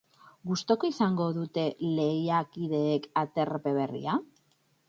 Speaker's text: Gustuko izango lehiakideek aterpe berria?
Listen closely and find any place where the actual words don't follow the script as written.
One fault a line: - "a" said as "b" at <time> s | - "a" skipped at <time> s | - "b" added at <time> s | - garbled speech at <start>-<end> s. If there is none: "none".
- "dute" added at 1.4 s